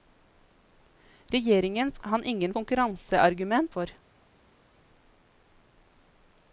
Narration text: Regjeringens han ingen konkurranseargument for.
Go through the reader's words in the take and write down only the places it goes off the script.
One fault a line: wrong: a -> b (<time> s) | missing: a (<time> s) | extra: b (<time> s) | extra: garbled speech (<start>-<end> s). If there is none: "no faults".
no faults